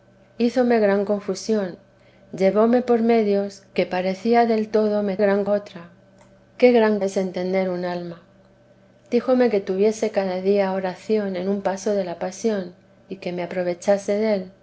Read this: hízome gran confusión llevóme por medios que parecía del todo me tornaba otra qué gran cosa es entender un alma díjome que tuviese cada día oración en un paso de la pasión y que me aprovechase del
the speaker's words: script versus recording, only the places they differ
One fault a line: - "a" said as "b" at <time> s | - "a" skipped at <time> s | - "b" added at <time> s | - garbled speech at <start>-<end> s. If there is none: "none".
- "tornaba" said as "gran" at 5.2 s
- "cosa" skipped at 7.0 s